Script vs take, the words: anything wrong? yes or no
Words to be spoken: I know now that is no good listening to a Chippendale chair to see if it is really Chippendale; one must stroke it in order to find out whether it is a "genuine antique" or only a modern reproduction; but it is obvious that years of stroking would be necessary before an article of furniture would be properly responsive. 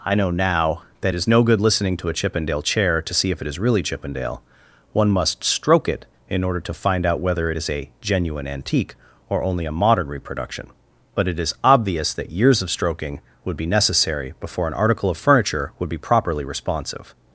no